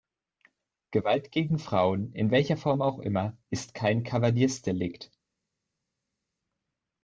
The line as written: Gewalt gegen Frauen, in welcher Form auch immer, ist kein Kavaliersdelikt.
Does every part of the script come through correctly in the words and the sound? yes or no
yes